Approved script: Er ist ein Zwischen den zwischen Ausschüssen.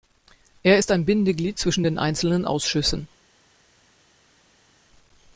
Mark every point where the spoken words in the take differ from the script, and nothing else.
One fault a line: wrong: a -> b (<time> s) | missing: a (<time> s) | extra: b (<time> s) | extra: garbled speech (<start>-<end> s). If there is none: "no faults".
extra: Bindeglied (1.0 s)
wrong: zwischen -> einzelnen (2.0 s)